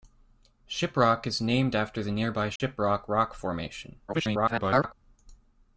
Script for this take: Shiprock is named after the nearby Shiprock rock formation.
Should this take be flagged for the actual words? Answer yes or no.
yes